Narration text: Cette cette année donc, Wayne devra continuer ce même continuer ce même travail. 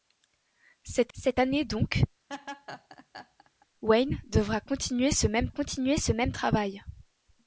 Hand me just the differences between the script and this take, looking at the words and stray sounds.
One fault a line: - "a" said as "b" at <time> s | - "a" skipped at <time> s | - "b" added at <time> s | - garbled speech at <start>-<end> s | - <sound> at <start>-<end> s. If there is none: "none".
- laugh at 2.3-3.7 s